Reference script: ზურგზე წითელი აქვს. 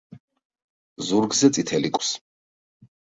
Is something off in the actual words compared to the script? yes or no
no